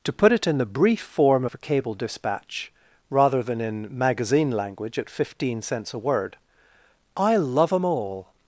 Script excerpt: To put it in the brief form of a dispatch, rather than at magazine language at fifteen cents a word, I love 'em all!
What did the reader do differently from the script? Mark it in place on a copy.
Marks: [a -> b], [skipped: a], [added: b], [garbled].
To put it in the brief form of a [added: cable] dispatch, rather than [at -> in] magazine language at fifteen cents a word, I love 'em all!